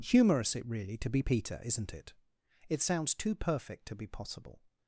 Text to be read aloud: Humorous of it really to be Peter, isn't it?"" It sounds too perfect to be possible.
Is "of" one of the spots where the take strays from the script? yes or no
yes